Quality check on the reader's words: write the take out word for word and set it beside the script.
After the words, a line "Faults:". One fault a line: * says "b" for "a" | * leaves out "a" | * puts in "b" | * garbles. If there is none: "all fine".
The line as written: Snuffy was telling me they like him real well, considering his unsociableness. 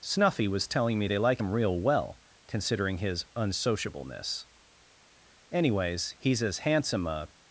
Snuffy was telling me they like him real well, considering his unsociableness. Anyways, he's as handsome a
Faults:
* puts in "Anyways he's as handsome a"